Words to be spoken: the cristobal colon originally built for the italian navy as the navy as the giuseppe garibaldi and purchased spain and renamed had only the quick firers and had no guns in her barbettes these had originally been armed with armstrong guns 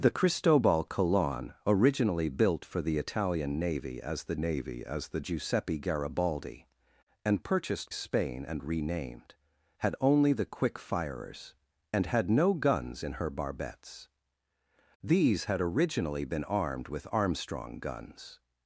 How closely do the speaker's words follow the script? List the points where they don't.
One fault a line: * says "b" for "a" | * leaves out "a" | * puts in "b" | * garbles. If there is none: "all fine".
all fine